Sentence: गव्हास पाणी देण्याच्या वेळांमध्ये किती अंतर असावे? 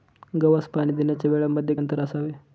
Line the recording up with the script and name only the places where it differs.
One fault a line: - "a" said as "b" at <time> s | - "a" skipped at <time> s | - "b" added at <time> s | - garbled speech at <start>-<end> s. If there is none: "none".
- "किती" skipped at 1.8 s